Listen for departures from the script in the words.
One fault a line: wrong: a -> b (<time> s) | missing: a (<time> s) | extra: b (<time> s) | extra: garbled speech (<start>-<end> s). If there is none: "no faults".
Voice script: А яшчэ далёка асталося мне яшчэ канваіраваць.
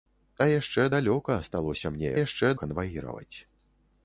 no faults